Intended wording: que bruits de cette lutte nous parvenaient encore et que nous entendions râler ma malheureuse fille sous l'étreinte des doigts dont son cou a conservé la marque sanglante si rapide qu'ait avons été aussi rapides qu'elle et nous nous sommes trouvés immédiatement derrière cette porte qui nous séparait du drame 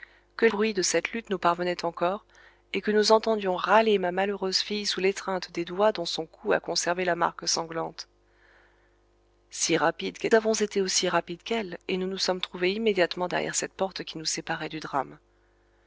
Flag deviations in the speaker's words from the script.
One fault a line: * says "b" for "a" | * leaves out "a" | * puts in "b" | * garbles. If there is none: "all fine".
all fine